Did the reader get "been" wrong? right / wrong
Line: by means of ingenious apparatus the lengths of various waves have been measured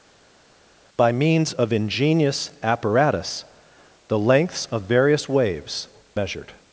wrong